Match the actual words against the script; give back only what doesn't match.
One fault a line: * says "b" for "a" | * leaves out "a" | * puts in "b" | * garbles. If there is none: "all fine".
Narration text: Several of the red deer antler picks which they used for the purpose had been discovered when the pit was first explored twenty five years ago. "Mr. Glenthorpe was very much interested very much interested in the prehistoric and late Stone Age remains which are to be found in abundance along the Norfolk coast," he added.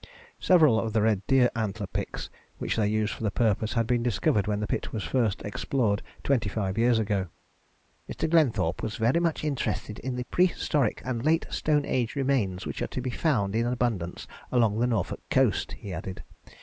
* leaves out "very much interested"